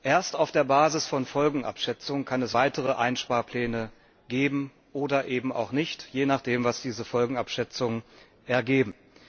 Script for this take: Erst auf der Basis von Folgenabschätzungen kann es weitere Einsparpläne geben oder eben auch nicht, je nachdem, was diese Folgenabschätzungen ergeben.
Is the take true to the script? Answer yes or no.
yes